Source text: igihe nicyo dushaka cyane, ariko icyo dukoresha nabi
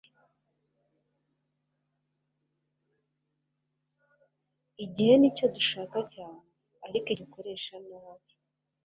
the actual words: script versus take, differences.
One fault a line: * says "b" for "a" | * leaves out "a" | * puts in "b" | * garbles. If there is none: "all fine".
* leaves out "icyo"